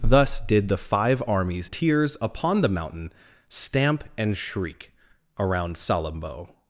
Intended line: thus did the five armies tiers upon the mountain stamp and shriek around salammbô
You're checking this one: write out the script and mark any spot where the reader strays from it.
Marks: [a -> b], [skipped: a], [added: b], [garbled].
thus did the five armies tiers upon the mountain stamp and shriek around salammbô